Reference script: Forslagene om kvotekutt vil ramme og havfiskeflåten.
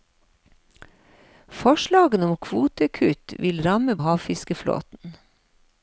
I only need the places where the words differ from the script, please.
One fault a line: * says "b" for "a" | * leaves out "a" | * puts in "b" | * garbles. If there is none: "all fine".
all fine